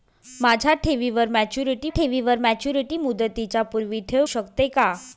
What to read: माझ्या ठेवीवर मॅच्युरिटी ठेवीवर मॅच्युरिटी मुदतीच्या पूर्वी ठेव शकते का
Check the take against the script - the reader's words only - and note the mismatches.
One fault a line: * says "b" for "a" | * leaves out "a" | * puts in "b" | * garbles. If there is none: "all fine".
all fine